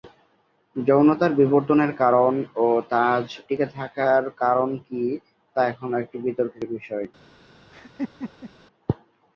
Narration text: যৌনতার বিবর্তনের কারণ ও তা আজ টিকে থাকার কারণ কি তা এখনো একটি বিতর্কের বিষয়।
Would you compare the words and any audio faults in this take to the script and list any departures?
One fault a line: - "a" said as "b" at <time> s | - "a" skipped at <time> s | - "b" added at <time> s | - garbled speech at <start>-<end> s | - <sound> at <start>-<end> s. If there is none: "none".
- laugh at 7.7-8.5 s